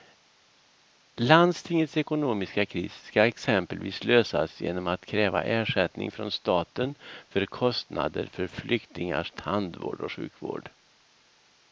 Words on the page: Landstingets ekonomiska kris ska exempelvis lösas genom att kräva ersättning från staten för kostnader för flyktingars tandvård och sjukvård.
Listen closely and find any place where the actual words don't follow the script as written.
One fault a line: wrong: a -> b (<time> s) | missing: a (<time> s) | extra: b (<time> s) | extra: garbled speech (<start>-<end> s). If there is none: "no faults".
no faults